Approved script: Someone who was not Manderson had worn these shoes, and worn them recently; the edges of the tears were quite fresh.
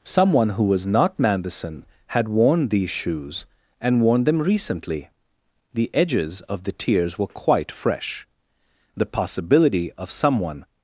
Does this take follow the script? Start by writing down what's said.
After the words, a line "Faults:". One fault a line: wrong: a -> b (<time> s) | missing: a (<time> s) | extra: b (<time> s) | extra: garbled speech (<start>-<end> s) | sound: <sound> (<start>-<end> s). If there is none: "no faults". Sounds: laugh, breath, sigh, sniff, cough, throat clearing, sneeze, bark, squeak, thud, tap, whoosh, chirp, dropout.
Someone who was not Manderson had worn these shoes, and worn them recently; the edges of the tears were quite fresh. The possibility of someone
Faults:
extra: The possibility of someone (9.0 s)